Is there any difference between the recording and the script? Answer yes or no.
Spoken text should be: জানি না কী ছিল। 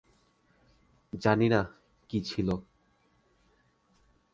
no